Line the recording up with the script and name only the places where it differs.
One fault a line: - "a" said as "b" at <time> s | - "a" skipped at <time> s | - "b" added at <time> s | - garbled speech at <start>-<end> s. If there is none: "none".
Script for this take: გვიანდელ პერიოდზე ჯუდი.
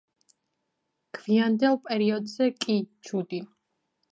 - "კი" added at 2.6 s